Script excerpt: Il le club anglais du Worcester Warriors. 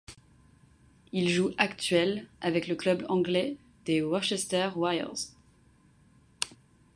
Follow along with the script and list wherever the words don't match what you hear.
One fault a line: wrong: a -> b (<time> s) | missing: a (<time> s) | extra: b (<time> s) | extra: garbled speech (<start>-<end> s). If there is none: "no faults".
extra: joue actuel avec (1.3 s)
wrong: du -> des (3.8 s)